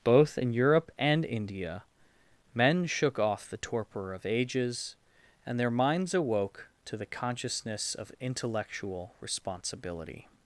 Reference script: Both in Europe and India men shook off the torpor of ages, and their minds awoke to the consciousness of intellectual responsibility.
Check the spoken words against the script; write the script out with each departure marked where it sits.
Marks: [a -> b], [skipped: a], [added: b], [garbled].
Both in Europe and India men shook off the torpor of ages, and their minds awoke to the consciousness of intellectual responsibility.